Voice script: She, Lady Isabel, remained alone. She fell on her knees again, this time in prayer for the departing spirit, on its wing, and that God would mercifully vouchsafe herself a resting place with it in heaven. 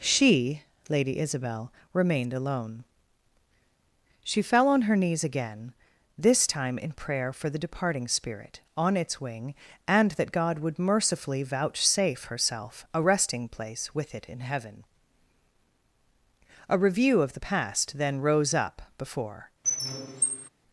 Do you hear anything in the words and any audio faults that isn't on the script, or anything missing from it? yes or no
yes